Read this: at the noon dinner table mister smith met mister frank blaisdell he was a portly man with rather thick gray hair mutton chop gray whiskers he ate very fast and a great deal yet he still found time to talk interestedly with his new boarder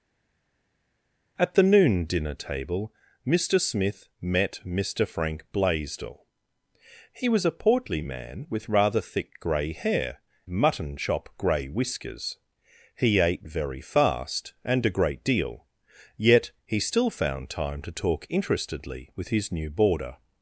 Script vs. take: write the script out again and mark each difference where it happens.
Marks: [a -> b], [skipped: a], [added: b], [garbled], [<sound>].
at the noon dinner table mister smith met mister frank blaisdell he was a portly man with rather thick gray hair mutton chop gray whiskers he ate very fast and a great deal yet he still found time to talk interestedly with his new boarder